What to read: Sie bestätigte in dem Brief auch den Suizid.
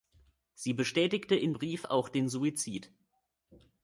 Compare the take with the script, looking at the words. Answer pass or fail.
fail